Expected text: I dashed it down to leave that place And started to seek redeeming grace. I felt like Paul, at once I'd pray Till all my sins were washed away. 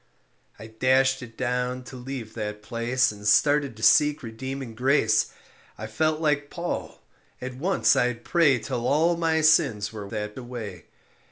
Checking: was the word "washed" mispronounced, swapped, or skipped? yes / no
yes